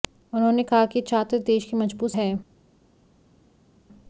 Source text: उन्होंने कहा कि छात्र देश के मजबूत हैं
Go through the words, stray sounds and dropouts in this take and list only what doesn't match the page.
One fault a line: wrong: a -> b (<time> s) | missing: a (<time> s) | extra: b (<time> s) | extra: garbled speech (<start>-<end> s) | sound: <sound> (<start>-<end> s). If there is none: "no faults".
no faults